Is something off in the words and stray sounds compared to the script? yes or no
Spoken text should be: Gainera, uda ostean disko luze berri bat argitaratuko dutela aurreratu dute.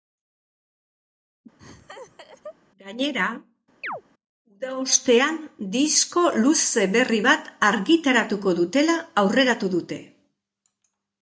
yes